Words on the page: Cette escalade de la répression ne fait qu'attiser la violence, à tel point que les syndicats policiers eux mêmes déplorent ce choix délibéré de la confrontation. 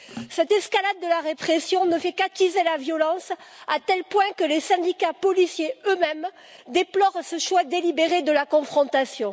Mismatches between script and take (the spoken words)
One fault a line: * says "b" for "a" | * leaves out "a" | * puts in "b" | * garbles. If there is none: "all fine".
all fine